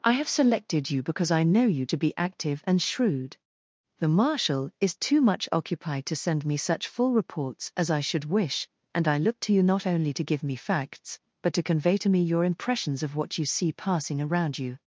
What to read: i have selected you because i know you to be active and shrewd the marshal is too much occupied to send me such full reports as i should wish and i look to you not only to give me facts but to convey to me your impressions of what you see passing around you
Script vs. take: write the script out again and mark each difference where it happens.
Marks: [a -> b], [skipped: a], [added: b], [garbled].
i have selected you because i know you to be active and shrewd the marshal is too much occupied to send me such full reports as i should wish and i look to you not only to give me facts but to convey to me your impressions of what you see passing around you